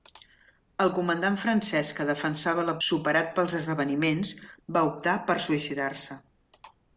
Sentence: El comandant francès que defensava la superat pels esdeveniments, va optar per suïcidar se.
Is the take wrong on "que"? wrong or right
right